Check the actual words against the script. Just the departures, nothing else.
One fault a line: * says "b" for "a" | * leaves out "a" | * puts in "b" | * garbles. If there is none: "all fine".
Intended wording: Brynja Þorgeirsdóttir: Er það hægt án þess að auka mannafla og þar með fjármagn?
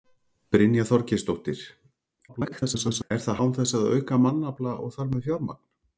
* garbles
* leaves out "hægt"